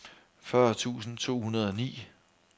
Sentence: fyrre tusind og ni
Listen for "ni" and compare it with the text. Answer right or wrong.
right